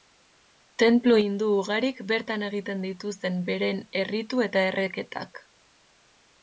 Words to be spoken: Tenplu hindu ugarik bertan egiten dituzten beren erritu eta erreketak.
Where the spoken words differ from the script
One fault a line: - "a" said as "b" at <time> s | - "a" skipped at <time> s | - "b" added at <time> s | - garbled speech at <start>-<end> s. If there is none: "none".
none